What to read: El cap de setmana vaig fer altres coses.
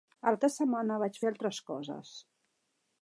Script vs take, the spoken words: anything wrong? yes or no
yes